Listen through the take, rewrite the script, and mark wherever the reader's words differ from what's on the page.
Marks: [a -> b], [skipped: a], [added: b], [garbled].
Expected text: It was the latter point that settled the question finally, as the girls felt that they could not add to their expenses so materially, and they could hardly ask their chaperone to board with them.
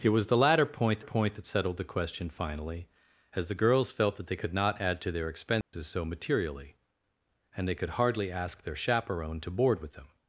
It was the latter point [added: point] that settled the question finally, as the girls felt that they could not add to their expenses so materially, and they could hardly ask their chaperone to board with them.